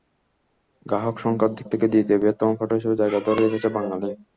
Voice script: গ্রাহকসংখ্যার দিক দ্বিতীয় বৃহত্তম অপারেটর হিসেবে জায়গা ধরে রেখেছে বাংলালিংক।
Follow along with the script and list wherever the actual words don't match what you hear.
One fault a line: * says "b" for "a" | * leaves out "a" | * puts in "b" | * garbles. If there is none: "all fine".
* puts in "থেকে"